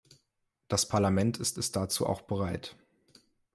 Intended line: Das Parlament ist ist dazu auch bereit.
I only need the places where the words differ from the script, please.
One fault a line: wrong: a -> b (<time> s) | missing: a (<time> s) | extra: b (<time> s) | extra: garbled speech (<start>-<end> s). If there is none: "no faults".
no faults